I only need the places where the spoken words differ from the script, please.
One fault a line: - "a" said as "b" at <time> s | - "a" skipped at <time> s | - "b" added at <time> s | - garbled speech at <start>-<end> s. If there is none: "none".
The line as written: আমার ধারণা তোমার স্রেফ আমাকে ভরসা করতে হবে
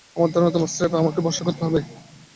none